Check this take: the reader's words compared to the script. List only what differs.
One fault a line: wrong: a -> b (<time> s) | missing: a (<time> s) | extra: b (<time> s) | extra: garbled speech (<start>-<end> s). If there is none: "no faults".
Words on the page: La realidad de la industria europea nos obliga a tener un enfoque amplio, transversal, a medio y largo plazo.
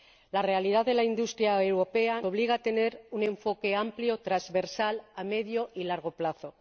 missing: nos (2.2 s)